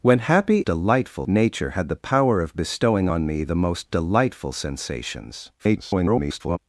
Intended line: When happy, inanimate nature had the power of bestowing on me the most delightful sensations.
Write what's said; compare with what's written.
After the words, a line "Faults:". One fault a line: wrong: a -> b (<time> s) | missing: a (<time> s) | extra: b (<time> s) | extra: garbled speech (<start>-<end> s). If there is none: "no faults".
When happy, delightful nature had the power of bestowing on me the most delightful sensations. [garbled]
Faults:
wrong: inanimate -> delightful (0.7 s)
extra: garbled speech (5.6-6.6 s)